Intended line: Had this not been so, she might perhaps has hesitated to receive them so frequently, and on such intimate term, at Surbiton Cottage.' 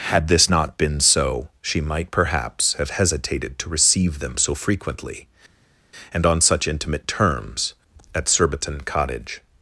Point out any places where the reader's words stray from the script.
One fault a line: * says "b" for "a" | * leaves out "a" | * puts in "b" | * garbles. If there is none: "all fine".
* says "have" for "has"
* says "terms" for "term"